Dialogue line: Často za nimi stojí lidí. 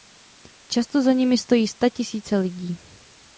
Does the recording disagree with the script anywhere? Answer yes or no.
yes